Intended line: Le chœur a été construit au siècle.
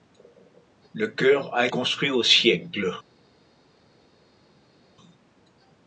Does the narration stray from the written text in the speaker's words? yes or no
yes